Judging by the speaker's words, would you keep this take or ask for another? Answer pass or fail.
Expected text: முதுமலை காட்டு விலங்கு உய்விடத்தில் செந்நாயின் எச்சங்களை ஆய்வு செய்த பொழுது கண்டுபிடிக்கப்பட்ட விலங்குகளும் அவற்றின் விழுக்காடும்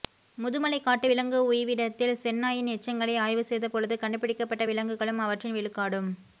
pass